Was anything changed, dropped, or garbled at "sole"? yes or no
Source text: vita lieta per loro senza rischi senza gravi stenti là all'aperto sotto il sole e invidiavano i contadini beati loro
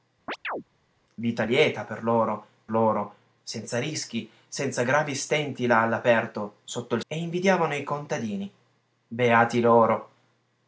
yes